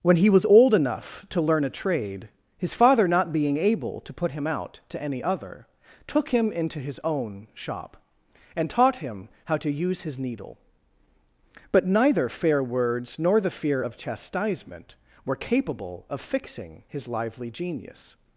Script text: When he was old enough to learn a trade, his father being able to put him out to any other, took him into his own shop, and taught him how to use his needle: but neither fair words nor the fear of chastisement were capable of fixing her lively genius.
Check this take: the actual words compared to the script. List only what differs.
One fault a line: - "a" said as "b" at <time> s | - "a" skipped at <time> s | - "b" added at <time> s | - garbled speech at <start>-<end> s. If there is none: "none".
- "not" added at 3.1 s
- "her" said as "his" at 16.9 s